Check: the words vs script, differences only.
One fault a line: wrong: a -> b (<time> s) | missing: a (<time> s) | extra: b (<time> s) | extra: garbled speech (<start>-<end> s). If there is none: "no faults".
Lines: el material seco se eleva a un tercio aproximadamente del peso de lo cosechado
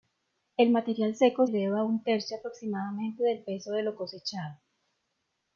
missing: se (1.4 s)